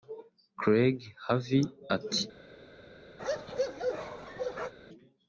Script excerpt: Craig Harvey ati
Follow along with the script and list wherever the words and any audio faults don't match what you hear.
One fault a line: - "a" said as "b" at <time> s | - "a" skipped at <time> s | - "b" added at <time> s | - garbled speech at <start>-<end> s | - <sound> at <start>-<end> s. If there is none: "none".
- bark at 3.2-4.7 s